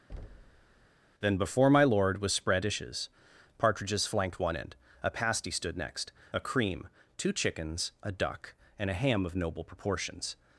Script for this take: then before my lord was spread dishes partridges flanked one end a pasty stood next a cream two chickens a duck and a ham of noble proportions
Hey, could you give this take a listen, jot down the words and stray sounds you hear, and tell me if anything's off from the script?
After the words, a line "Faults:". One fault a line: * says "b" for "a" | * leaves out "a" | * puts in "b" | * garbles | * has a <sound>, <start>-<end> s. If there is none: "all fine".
then before my lord was spread dishes partridges flanked one end a pasty stood next a cream two chickens a duck and a ham of noble proportions
Faults:
* has a thud, 0.1-0.9 s